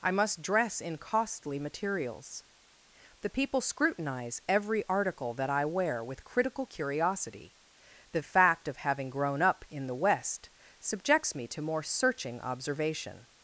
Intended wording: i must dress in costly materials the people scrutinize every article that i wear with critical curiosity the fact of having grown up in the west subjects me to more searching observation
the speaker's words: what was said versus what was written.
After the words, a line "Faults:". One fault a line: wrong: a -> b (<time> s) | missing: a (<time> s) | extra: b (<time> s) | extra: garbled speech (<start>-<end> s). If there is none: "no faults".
i must dress in costly materials the people scrutinize every article that i wear with critical curiosity the fact of having grown up in the west subjects me to more searching observation
Faults:
no faults